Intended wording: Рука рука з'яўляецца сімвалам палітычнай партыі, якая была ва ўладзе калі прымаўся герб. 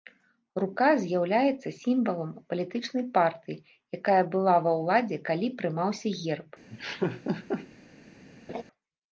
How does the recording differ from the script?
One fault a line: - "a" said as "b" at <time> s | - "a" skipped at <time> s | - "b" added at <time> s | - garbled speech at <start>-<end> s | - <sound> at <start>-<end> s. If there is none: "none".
- "рука" skipped at 0.9 s
- laugh at 6.7-7.7 s
- laugh at 8.5-8.6 s